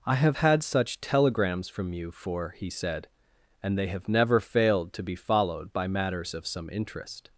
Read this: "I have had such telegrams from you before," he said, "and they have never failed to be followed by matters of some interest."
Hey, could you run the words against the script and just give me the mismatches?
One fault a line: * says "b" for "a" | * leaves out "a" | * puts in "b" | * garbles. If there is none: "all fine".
* says "for" for "before"